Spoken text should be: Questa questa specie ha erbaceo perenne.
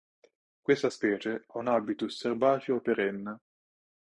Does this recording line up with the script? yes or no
no